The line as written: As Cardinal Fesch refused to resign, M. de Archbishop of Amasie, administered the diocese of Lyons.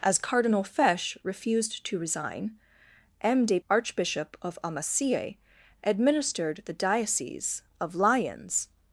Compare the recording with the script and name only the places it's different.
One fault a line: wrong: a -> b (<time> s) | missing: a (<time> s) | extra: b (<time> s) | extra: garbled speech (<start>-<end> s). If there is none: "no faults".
no faults